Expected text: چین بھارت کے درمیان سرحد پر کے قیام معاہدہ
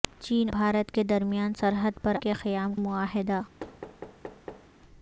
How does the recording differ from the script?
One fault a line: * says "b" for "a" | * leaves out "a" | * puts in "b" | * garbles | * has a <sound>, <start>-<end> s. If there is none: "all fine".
* has a thud, 3.6-4.7 s